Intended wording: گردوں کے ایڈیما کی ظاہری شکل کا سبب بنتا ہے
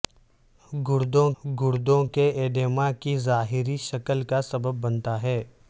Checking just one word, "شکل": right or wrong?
right